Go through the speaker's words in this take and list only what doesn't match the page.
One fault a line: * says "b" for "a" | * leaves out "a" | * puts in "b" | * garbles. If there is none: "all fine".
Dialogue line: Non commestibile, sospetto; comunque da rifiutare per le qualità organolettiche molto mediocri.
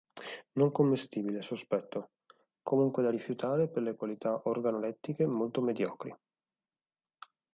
all fine